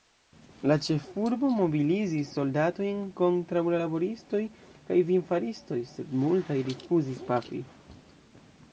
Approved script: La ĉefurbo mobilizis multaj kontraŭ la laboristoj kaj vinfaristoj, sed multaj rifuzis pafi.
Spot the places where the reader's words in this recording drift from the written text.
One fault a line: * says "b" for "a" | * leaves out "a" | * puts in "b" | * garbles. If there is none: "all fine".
* says "soldatojn" for "multaj"